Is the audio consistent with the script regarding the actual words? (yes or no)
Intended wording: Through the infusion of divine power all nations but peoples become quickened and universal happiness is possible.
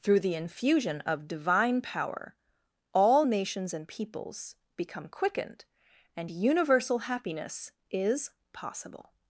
no